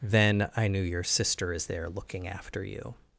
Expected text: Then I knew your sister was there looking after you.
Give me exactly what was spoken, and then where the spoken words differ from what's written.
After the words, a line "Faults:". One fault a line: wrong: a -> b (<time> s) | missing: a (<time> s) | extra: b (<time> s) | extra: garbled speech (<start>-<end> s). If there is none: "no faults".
Then I knew your sister is there looking after you.
Faults:
wrong: was -> is (1.5 s)